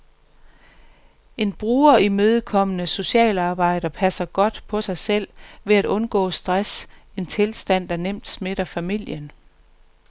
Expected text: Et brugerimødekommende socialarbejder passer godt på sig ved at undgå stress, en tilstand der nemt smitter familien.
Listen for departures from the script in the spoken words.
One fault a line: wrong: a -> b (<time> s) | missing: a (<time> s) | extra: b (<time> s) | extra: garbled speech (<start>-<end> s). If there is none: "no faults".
wrong: Et -> En (1.4 s)
extra: selv (5.0 s)